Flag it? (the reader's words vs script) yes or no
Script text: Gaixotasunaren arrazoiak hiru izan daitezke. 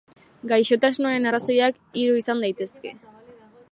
no